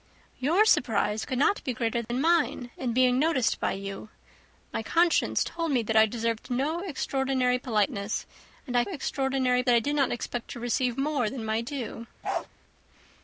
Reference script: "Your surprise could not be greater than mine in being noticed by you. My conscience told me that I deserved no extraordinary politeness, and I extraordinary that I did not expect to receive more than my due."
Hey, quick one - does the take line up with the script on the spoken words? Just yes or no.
yes